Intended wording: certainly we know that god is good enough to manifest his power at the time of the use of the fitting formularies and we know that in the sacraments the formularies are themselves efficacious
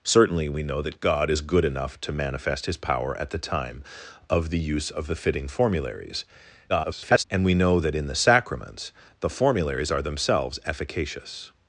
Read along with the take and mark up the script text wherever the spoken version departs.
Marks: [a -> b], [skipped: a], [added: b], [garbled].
certainly we know that god is good enough to manifest his power at the time of the use of the fitting formularies [garbled] and we know that in the sacraments the formularies are themselves efficacious